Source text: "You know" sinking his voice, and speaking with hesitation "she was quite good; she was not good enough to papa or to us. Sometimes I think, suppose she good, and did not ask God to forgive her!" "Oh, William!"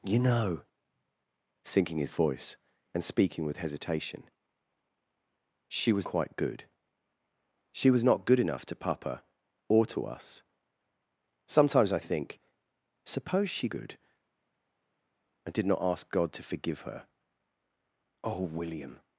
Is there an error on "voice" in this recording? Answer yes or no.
no